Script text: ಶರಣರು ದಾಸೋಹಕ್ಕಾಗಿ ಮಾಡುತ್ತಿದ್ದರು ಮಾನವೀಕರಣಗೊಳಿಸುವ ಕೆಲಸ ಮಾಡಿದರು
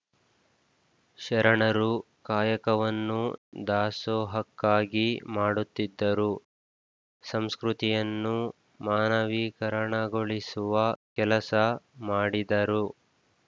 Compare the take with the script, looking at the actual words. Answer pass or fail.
fail